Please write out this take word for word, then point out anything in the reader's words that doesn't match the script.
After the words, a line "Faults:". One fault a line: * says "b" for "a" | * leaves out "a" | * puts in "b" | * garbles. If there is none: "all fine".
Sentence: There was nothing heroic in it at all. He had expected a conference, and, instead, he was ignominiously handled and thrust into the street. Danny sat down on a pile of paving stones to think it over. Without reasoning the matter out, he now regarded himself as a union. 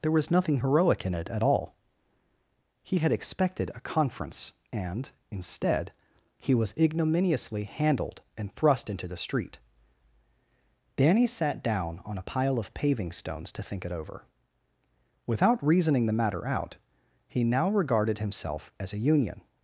There was nothing heroic in it at all. He had expected a conference, and, instead, he was ignominiously handled and thrust into the street. Danny sat down on a pile of paving stones to think it over. Without reasoning the matter out, he now regarded himself as a union.
Faults:
all fine